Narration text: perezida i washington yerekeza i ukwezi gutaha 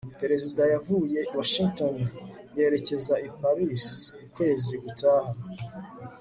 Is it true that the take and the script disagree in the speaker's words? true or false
true